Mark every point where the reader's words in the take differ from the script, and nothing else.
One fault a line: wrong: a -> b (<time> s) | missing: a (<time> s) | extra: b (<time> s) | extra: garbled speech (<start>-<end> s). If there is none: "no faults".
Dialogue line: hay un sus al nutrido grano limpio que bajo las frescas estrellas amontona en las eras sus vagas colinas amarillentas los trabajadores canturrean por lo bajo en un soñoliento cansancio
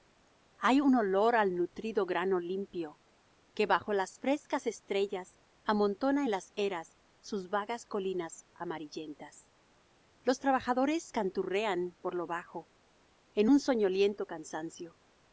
wrong: sus -> olor (0.9 s)